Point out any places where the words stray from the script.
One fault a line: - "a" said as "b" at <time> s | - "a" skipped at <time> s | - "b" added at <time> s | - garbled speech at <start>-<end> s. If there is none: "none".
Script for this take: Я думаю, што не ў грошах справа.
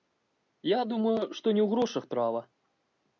none